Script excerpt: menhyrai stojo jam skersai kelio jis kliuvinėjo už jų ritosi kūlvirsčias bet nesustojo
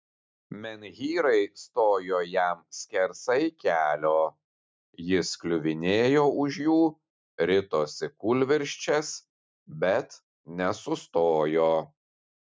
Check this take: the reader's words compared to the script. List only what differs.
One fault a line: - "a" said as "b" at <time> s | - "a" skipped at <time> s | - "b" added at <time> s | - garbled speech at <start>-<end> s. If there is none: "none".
none